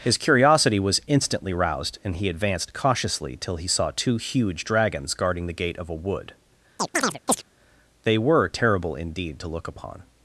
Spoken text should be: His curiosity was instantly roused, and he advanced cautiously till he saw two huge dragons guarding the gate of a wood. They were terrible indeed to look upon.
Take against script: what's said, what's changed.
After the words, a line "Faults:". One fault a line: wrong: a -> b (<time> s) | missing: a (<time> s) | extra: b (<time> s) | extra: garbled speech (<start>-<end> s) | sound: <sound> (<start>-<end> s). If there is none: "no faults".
His curiosity was instantly roused, and he advanced cautiously till he saw two huge dragons guarding the gate of a wood. They were terrible indeed to look upon.
Faults:
sound: chirp (6.8-7.4 s)